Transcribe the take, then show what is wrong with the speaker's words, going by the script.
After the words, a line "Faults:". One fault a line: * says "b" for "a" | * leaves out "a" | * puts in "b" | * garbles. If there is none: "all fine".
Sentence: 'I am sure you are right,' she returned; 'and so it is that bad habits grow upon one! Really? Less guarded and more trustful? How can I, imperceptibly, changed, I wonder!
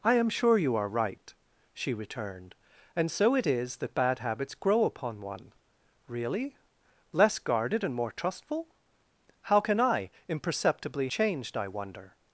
'I am sure you are right,' she returned; 'and so it is that bad habits grow upon one! Really? Less guarded and more trustful? How can I, imperceptibly, changed, I wonder!
Faults:
all fine